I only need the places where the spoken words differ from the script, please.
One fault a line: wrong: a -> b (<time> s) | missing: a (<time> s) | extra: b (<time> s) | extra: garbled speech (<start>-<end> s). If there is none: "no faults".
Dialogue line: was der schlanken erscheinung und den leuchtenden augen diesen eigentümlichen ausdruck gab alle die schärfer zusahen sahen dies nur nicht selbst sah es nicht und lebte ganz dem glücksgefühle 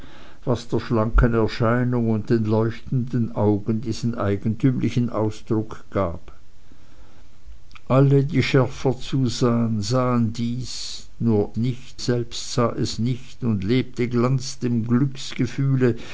no faults